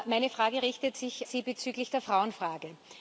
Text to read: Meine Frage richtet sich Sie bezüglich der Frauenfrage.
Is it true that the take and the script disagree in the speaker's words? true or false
false